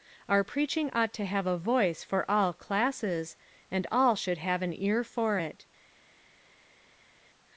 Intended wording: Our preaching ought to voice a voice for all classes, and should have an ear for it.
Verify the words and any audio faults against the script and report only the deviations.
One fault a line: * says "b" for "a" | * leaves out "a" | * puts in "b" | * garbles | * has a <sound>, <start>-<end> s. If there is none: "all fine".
* says "have" for "voice"
* puts in "all"